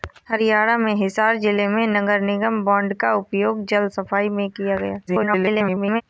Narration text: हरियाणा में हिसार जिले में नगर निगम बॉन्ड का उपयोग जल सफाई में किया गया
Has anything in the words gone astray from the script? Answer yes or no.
yes